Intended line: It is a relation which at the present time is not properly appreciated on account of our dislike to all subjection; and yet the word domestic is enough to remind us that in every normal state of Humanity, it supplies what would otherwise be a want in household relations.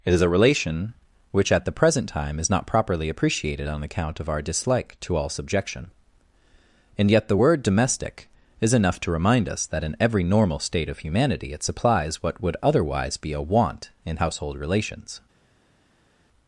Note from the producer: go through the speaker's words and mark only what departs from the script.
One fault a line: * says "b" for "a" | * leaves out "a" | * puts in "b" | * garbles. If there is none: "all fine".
all fine